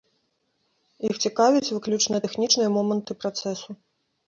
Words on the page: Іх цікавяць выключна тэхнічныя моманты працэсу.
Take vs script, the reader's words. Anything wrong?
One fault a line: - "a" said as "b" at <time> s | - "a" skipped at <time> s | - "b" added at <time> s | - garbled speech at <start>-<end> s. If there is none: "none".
none